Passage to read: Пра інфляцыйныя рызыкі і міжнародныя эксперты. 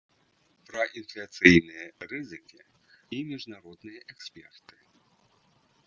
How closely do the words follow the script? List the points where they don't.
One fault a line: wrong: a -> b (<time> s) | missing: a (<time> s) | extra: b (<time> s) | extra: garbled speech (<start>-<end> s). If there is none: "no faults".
no faults